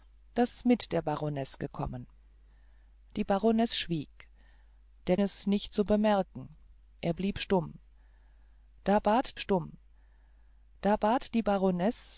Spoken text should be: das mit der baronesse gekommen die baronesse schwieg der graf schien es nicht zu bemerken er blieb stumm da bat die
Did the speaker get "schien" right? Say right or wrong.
wrong